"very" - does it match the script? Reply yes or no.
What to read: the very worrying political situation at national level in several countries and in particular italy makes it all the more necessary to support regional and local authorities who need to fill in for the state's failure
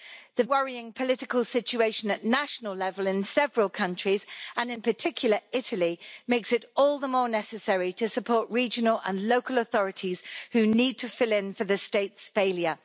no